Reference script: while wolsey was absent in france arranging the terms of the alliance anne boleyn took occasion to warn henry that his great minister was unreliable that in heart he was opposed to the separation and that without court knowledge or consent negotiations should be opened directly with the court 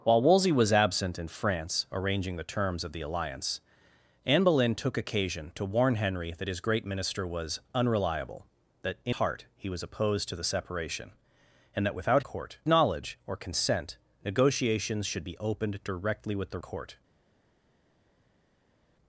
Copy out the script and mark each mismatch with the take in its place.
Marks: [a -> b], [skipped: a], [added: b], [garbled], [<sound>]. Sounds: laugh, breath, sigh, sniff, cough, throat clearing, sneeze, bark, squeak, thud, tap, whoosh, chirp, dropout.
while wolsey was absent in france arranging the terms of the alliance anne boleyn took occasion to warn henry that his great minister was unreliable that in heart he was opposed to the separation and that without court knowledge or consent negotiations should be opened directly with the court